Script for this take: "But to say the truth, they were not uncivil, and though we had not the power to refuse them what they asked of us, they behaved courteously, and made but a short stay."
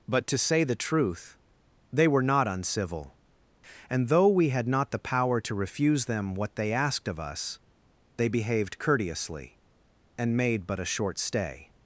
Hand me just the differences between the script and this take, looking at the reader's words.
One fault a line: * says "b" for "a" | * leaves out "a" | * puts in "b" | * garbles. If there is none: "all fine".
all fine